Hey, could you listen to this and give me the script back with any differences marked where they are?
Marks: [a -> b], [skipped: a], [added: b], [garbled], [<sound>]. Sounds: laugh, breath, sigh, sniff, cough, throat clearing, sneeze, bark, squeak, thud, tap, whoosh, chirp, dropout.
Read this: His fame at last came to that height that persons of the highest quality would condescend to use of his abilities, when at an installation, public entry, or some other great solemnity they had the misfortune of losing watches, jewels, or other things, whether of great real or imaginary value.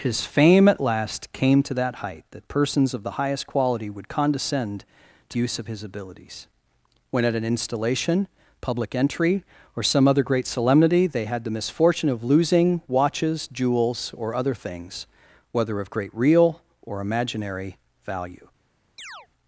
His fame at last came to that height that persons of the highest quality would condescend to use of his abilities, when at an installation, public entry, or some other great solemnity they had the misfortune of losing watches, jewels, or other things, whether of great real or imaginary value. [chirp]